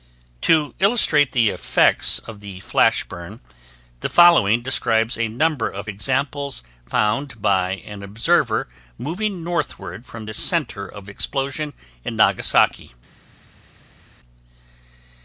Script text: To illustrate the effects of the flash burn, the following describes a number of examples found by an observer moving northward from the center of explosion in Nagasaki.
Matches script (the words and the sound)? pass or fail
pass